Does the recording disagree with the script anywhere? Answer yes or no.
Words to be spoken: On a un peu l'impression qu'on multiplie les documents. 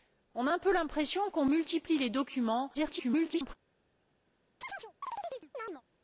yes